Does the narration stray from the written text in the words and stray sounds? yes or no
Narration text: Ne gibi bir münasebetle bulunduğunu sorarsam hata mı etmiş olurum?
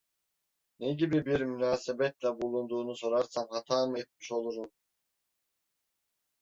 no